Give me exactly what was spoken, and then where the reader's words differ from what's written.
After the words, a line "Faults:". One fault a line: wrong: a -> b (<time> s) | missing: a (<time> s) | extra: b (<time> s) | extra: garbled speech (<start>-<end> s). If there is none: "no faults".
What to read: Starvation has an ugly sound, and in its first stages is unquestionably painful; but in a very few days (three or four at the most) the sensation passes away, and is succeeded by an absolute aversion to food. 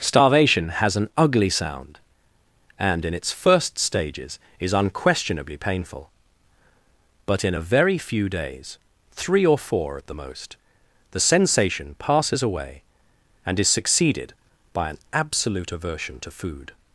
Starvation has an ugly sound, and in its first stages is unquestionably painful; but in a very few days (three or four at the most) the sensation passes away, and is succeeded by an absolute aversion to food.
Faults:
no faults